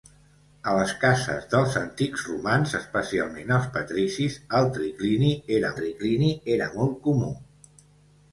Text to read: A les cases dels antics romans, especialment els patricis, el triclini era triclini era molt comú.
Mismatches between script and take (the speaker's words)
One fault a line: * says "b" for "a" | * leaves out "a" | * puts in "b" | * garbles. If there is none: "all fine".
all fine